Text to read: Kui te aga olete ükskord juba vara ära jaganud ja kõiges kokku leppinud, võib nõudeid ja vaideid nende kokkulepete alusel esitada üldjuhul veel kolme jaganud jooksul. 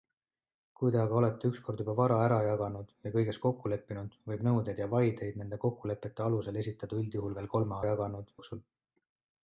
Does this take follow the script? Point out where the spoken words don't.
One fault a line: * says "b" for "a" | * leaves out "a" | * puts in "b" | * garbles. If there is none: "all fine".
all fine